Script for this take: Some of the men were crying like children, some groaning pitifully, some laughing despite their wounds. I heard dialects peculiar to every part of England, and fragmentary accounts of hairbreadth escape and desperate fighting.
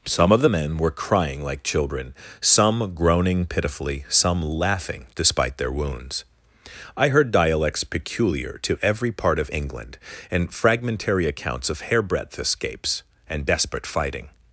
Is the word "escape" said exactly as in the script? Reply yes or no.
no